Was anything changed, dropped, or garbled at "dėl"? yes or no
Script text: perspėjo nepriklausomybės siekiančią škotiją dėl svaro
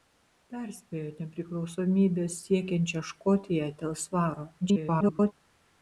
no